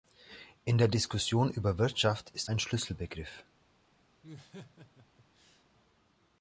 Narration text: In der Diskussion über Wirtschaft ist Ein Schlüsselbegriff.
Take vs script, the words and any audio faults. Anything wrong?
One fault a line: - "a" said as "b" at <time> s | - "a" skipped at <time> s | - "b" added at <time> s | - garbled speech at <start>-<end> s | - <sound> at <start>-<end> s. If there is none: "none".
- laugh at 4.2-5.6 s